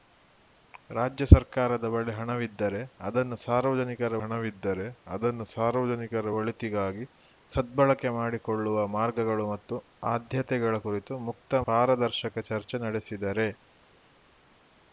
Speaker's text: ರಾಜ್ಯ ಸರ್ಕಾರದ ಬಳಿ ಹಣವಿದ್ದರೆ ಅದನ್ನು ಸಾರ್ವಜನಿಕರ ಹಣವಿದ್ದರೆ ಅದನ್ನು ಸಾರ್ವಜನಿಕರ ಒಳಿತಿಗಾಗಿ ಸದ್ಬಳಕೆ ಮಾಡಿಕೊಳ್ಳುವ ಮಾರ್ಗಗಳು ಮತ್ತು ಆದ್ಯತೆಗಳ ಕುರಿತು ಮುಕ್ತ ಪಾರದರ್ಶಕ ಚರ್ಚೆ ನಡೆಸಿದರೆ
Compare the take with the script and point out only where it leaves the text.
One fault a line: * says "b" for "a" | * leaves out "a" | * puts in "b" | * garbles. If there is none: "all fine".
all fine